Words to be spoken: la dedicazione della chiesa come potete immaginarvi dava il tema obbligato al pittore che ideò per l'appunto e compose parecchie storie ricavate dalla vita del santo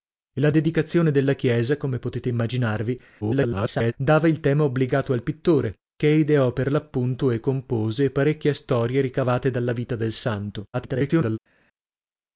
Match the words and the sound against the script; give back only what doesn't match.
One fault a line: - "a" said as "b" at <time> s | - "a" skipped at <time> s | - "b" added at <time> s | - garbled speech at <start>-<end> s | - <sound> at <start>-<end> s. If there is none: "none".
- garbled speech at 3.2-3.9 s
- garbled speech at 10.7-11.4 s